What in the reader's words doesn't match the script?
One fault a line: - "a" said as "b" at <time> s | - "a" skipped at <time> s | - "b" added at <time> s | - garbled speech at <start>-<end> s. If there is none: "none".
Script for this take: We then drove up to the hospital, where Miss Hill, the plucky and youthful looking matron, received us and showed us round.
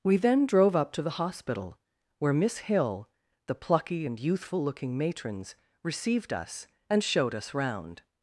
- "matron" said as "matrons" at 5.0 s